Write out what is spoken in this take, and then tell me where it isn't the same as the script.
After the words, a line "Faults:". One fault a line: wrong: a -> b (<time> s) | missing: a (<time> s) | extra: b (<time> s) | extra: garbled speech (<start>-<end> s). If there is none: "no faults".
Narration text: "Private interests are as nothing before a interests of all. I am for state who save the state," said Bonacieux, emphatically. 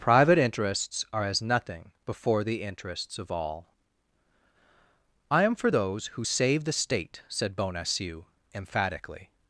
"Private interests are as nothing before the interests of all. I am for those who save the state," said Bonacieux, emphatically.
Faults:
wrong: a -> the (2.4 s)
wrong: state -> those (5.7 s)